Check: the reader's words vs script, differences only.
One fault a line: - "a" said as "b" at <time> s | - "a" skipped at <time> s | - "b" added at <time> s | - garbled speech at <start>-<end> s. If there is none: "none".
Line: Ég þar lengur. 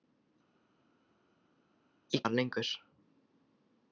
none